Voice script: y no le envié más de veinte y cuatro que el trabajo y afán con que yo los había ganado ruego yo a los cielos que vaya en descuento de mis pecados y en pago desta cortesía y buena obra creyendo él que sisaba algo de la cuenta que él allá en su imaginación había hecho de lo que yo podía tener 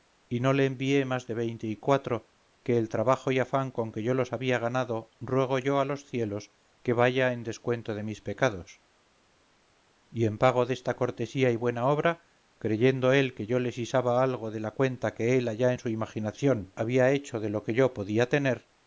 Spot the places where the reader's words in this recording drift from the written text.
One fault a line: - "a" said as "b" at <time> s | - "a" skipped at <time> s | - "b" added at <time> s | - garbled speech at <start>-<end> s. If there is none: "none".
- "yo le" added at 13.5 s